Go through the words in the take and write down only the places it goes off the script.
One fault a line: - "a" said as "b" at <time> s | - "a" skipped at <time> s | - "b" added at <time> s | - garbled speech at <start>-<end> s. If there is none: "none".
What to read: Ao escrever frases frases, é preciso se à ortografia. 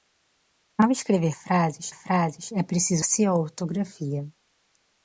none